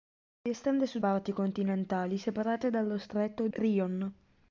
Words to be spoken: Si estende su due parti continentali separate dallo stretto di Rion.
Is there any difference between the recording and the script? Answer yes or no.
yes